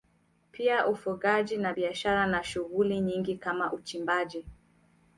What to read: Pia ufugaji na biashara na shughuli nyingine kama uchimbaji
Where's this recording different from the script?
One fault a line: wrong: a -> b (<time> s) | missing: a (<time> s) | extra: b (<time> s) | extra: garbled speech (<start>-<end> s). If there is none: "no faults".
no faults